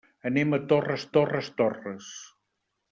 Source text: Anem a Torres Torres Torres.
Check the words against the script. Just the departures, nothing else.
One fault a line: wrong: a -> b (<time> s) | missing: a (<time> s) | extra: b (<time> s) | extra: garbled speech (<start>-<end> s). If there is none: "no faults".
no faults